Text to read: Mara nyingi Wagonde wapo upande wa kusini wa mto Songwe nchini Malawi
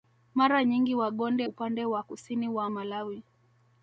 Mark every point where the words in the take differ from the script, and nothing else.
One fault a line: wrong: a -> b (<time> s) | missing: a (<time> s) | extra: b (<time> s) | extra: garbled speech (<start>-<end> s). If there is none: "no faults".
missing: wapo (1.5 s)
missing: mto Songwe nchini (2.7 s)